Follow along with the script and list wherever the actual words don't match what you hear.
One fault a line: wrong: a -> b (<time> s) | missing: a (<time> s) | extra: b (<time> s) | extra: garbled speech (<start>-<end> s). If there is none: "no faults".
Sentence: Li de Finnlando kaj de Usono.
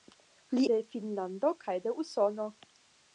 no faults